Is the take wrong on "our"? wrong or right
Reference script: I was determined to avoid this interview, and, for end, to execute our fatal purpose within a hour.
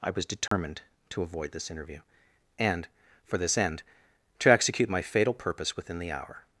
wrong